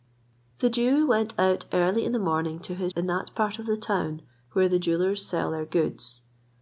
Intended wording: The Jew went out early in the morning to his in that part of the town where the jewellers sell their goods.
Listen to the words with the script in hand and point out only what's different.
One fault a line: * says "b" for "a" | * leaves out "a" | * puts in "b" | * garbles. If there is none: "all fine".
all fine